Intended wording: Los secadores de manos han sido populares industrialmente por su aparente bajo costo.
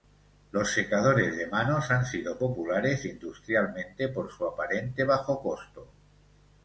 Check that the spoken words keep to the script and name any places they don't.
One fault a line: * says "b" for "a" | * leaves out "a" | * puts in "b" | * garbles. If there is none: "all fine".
all fine